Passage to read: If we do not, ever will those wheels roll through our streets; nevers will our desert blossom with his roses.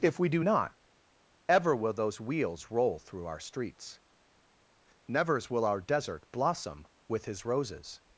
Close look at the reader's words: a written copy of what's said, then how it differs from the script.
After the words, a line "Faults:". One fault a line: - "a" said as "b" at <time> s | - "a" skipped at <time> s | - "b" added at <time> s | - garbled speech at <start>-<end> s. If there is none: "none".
If we do not, ever will those wheels roll through our streets; nevers will our desert blossom with his roses.
Faults:
none